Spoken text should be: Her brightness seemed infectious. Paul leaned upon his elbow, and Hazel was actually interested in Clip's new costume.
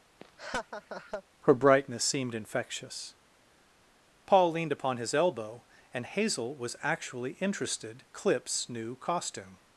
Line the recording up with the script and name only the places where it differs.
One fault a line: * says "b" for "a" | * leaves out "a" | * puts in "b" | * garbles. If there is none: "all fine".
* leaves out "in"